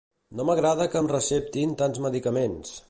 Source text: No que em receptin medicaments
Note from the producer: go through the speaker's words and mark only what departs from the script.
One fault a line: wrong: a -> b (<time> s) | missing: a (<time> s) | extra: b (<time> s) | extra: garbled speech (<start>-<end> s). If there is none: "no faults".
extra: m'agrada (0.5 s)
extra: tants (1.8 s)